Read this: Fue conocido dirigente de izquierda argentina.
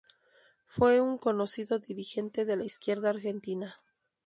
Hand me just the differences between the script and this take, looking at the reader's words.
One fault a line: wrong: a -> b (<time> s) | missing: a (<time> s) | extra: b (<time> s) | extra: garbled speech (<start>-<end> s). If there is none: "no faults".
extra: un (1.0 s)
extra: la (2.5 s)